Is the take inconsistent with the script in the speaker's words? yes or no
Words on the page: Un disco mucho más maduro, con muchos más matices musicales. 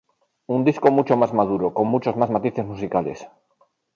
no